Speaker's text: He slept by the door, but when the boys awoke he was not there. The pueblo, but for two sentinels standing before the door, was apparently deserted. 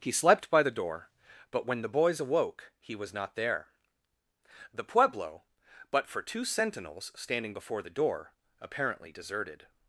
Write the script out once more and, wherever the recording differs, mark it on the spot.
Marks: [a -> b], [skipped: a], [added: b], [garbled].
He slept by the door, but when the boys awoke he was not there. The pueblo, but for two sentinels standing before the door, [skipped: was] apparently deserted.